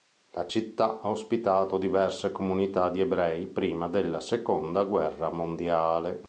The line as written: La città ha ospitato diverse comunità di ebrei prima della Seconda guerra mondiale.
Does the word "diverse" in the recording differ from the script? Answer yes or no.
no